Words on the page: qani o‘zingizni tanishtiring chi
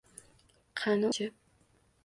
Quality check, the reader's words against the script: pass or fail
fail